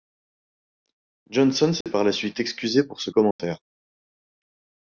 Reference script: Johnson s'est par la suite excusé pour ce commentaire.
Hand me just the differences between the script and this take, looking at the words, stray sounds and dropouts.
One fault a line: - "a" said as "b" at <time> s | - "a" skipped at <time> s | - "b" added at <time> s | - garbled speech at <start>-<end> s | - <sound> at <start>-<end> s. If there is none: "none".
- dropout at 1.8-1.9 s
- dropout at 3.3-3.4 s